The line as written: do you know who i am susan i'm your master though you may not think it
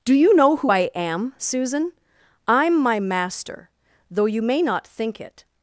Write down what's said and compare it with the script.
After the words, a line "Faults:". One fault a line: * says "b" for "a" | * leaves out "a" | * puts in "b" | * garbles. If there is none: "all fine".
do you know who i am susan i'm my master though you may not think it
Faults:
* says "my" for "your"